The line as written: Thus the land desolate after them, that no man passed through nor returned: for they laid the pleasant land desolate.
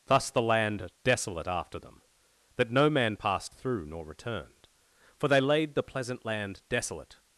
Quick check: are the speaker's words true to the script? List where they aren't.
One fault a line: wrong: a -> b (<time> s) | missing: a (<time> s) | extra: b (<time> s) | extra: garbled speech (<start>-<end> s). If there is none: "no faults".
no faults